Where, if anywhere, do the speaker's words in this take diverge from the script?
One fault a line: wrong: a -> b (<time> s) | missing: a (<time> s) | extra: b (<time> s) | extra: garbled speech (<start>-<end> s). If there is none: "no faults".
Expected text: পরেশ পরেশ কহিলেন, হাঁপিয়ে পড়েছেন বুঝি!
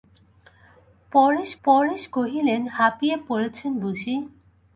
no faults